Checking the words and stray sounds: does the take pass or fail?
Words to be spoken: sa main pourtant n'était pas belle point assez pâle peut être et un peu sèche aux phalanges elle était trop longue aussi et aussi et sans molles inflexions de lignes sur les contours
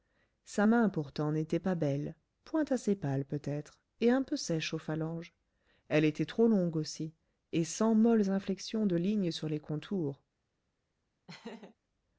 fail